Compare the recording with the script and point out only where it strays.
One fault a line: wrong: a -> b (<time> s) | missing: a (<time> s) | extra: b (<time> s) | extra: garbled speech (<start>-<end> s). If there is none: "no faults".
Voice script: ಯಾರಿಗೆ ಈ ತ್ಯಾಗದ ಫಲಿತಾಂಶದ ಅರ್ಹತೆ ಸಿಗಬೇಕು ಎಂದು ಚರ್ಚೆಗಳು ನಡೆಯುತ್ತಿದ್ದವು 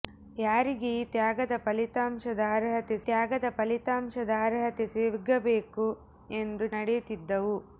extra: ತ್ಯಾಗದ ಫಲಿತಾಂಶದ ಅರ್ಹತೆ (3.0 s)
missing: ಚರ್ಚೆಗಳು (6.7 s)